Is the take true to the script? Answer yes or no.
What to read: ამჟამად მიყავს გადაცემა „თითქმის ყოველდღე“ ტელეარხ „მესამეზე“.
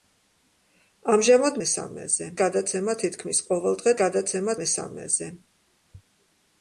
no